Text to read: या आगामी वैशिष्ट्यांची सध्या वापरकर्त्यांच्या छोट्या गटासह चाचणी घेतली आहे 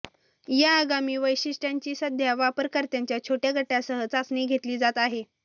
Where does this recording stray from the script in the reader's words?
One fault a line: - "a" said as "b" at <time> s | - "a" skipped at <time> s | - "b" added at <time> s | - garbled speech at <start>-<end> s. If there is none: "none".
- "जात" added at 4.8 s